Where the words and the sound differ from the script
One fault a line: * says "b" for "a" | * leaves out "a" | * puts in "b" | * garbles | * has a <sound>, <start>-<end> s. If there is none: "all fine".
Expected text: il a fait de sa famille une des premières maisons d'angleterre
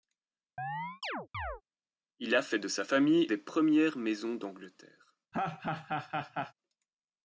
* has a chirp, 0.6-1.6 s
* leaves out "une"
* has a laugh, 5.3-6.5 s